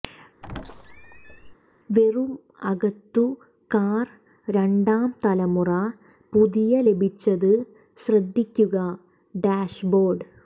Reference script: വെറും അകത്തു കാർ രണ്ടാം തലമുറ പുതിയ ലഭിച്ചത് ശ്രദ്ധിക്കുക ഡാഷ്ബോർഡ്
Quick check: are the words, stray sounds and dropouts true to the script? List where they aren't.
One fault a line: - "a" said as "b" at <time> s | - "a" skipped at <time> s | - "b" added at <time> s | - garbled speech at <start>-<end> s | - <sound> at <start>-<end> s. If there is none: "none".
- squeak at 0.4-1.5 s